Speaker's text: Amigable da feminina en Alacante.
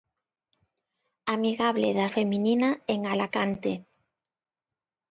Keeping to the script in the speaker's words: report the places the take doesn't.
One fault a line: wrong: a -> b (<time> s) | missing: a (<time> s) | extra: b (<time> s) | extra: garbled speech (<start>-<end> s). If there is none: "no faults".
no faults